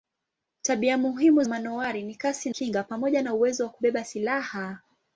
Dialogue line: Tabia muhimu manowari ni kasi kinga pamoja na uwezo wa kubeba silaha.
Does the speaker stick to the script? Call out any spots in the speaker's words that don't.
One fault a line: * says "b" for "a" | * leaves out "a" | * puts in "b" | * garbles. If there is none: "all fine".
all fine